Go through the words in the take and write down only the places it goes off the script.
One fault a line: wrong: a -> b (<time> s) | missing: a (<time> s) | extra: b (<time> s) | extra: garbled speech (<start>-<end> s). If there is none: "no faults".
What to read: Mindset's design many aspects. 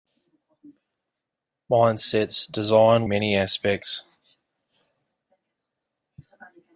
no faults